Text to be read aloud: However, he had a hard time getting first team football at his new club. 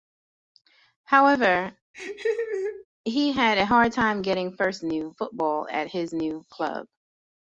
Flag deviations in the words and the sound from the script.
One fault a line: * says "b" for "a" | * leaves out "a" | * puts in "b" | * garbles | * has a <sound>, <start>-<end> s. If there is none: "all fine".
* has a laugh, 1.9-2.9 s
* says "new" for "team"